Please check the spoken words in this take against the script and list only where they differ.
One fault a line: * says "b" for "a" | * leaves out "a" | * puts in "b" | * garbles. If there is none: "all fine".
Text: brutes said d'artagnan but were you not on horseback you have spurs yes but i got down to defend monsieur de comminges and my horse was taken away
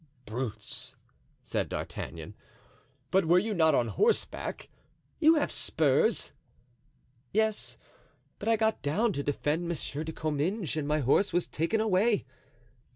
all fine